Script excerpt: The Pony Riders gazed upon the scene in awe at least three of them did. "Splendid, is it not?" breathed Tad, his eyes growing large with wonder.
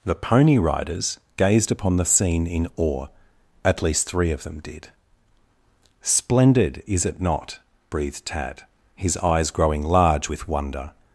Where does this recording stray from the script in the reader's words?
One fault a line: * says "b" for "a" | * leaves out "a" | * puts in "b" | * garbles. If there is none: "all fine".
all fine